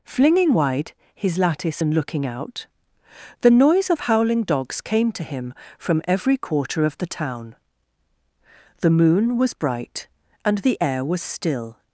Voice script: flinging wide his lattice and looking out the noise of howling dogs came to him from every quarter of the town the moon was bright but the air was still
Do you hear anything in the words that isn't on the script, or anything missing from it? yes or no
yes